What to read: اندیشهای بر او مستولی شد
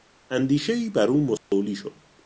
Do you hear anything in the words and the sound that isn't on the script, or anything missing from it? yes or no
yes